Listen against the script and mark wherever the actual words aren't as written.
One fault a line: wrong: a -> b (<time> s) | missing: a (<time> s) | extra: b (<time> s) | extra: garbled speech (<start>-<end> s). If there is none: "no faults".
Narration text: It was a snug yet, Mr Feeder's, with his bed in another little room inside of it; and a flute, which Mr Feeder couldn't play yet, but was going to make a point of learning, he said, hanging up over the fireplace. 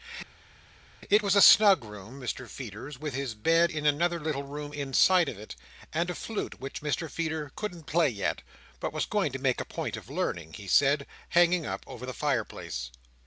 wrong: yet -> room (1.8 s)